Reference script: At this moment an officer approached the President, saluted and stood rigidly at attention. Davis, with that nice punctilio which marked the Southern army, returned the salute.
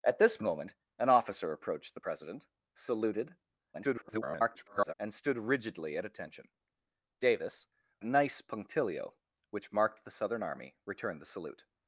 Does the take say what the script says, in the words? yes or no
no